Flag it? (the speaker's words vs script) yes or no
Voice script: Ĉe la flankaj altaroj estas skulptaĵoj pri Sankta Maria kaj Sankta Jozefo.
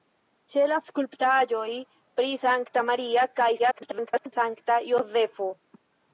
yes